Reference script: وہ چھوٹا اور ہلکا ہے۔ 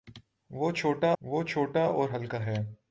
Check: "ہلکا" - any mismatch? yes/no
no